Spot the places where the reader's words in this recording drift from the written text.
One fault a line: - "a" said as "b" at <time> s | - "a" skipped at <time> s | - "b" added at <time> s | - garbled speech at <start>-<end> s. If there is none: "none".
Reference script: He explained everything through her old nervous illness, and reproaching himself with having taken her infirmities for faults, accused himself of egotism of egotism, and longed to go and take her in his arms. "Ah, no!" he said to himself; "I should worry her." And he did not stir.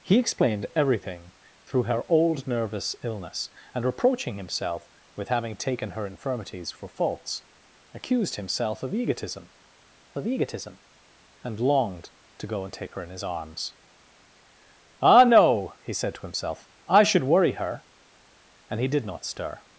none